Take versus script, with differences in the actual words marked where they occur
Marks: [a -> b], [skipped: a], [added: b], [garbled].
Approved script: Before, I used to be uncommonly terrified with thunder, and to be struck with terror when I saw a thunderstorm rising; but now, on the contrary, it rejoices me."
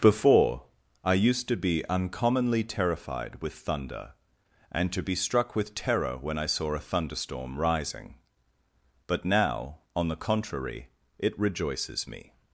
Before, I used to be uncommonly terrified with thunder, and to be struck with terror when I saw a thunderstorm rising; but now, on the contrary, it rejoices me."